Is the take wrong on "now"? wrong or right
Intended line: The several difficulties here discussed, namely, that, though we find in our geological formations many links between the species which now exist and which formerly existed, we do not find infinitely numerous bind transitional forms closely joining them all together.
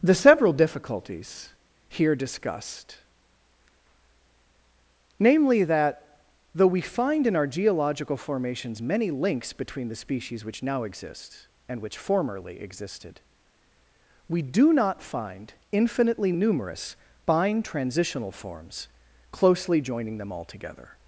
right